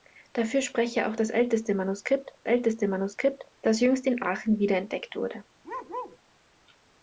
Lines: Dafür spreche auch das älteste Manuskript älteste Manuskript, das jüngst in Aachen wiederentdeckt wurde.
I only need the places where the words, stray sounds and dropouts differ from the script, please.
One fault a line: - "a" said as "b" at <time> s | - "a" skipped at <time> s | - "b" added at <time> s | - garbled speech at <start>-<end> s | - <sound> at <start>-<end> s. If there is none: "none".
- bark at 5.6-6.2 s